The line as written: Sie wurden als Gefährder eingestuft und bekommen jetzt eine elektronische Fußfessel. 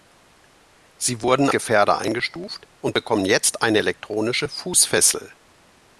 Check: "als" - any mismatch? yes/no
yes